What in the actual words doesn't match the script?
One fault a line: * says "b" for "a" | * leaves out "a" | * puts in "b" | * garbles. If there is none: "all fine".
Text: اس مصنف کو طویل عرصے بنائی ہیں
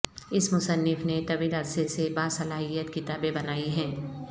* says "نے" for "کو"
* puts in "سے باصلاحیت کتابیں"